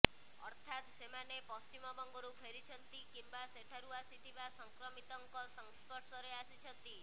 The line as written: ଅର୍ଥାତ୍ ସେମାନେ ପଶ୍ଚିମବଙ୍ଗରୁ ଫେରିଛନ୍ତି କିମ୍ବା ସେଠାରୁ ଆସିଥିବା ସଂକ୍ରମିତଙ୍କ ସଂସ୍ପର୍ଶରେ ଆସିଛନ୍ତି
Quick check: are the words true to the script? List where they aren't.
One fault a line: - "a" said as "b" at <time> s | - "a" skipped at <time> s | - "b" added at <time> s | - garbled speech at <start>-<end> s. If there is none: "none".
none